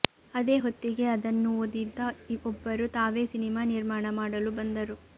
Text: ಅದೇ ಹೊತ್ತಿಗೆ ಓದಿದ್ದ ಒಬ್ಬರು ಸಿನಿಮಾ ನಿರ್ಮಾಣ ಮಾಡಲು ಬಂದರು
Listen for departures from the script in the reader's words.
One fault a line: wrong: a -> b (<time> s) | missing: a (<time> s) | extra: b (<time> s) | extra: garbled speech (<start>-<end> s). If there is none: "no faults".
extra: ಅದನ್ನು (1.1 s)
extra: ತಾವೇ (3.0 s)